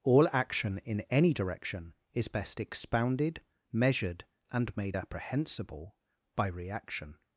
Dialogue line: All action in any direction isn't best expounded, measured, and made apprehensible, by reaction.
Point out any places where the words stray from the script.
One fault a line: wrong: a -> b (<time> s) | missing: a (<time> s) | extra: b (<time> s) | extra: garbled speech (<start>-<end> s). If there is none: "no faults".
wrong: isn't -> is (2.1 s)